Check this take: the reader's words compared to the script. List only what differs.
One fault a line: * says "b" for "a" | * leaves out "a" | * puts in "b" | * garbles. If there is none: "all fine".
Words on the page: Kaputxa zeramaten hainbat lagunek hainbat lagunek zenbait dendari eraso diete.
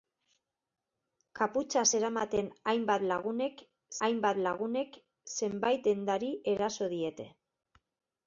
all fine